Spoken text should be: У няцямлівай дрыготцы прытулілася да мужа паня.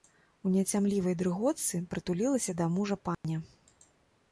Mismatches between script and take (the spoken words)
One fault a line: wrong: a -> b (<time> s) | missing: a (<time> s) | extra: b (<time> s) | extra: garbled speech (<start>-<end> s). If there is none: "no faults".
no faults